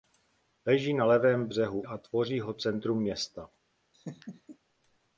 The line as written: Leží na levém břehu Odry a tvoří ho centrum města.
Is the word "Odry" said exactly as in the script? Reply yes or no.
no